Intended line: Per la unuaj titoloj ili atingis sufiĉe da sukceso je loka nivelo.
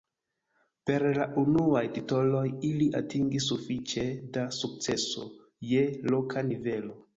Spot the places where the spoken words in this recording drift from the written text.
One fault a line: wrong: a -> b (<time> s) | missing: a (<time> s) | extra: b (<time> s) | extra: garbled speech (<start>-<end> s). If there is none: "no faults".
no faults